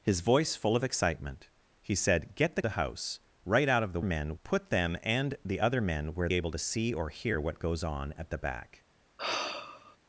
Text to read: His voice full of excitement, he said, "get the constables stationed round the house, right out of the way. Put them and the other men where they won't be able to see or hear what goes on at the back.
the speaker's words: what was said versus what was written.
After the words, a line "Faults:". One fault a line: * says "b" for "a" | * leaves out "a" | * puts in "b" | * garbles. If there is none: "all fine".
His voice full of excitement, he said, "get the the house, right out of the men. Put them and the other men where able to see or hear what goes on at the back.
Faults:
* leaves out "constables stationed round"
* says "men" for "way"
* leaves out "they won't be"